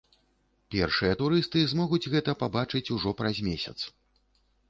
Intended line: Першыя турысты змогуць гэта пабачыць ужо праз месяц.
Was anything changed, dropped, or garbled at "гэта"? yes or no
no